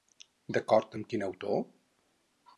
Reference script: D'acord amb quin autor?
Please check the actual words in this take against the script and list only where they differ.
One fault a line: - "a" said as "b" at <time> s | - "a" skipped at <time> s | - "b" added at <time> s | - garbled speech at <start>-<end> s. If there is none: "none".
none